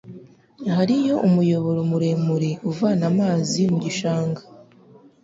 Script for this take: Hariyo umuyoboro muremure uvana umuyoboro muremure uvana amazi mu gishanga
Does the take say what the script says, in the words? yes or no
no